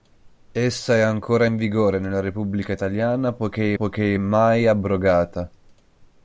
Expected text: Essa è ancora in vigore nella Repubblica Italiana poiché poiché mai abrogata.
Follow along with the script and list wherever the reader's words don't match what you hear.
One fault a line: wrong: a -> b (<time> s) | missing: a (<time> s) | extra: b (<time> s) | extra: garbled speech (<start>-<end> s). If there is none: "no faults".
no faults